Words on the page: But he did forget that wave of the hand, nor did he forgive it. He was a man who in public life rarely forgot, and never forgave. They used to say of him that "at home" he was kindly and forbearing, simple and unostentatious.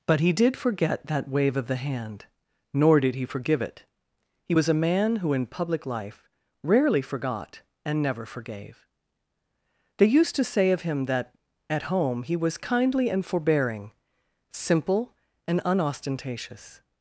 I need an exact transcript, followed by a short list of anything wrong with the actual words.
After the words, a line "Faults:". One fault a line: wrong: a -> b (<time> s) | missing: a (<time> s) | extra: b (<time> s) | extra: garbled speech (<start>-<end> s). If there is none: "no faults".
But he did forget that wave of the hand, nor did he forgive it. He was a man who in public life rarely forgot, and never forgave. They used to say of him that "at home" he was kindly and forbearing, simple and unostentatious.
Faults:
no faults